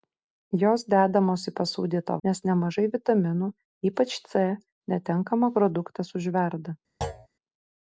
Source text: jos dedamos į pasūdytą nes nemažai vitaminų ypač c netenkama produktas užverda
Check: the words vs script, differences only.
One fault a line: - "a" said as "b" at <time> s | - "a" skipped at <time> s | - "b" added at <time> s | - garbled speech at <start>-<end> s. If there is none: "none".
none